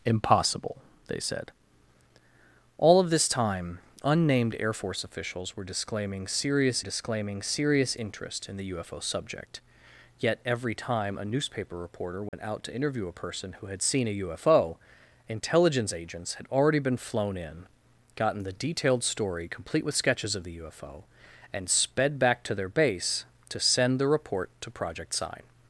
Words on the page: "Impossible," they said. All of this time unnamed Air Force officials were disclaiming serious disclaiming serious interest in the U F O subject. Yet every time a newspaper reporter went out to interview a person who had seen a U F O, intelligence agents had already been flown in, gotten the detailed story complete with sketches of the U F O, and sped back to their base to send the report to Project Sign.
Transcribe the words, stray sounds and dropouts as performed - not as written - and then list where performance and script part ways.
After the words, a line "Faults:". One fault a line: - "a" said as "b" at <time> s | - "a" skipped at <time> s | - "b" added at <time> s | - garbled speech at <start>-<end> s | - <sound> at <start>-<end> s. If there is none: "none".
"Impossible," they said. All of this time unnamed Air Force officials were disclaiming serious disclaiming serious interest in the U F O subject. Yet every time a newspaper reporter went out to interview a person who had seen a U F O, intelligence agents had already been flown in, gotten the detailed story complete with sketches of the U F O, and sped back to their base to send the report to Project Sign.
Faults:
- dropout at 12.3-12.3 s